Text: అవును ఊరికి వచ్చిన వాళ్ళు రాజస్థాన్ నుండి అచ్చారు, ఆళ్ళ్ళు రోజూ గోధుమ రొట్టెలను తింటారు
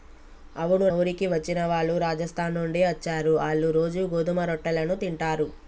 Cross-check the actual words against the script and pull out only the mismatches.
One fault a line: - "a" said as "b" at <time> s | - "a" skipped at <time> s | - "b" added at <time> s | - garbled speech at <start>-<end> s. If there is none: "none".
none